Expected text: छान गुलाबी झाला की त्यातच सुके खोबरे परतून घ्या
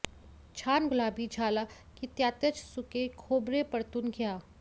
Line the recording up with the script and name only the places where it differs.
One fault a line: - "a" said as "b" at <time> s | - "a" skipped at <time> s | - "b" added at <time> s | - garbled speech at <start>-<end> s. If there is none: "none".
none